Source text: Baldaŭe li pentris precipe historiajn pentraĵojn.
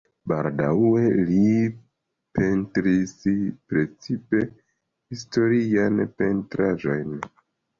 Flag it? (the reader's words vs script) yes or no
no